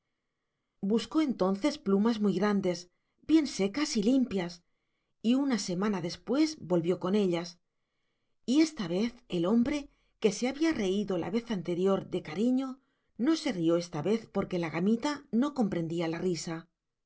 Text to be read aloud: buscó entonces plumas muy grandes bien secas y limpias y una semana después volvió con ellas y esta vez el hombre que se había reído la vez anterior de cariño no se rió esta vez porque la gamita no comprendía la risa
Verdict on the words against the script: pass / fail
pass